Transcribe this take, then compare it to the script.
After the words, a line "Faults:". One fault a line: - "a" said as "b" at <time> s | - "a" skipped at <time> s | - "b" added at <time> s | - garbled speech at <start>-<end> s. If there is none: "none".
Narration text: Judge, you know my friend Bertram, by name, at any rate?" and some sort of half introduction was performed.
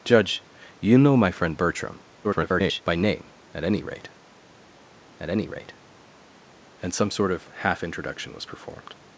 Judge, you know my friend Bertram, [garbled] by name, at any rate at any rate?" and some sort of half introduction was performed.
Faults:
- garbled speech at 2.2-2.8 s
- "at any rate" added at 5.2 s